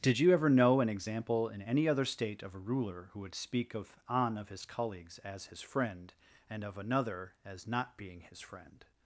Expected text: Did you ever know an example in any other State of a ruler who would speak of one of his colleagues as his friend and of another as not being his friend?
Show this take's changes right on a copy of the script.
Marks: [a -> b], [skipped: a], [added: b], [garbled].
Did you ever know an example in any other State of a ruler who would speak of [one -> on] of his colleagues as his friend and of another as not being his friend?